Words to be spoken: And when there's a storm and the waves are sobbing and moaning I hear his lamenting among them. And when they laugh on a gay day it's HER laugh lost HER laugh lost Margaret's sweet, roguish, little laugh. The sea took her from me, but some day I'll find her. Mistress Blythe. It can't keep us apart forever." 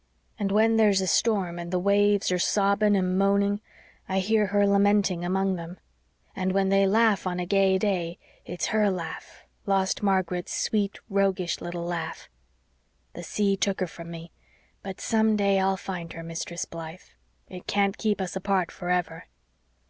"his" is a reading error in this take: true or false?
true